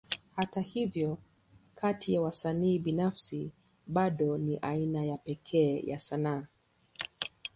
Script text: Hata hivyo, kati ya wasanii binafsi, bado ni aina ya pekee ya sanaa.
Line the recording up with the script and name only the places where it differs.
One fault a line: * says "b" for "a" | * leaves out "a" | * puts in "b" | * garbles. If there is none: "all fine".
all fine